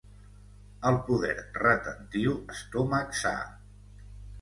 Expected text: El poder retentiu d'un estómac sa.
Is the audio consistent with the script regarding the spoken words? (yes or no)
no